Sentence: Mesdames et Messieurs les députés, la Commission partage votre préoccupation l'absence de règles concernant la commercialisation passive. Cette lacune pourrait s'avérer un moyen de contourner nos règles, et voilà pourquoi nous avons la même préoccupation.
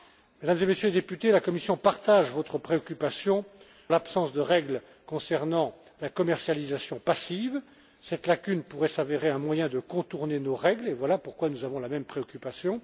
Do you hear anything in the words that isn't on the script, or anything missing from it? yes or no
no